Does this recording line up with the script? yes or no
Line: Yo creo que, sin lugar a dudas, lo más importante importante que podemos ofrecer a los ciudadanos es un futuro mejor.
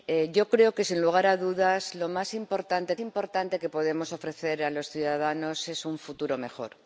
yes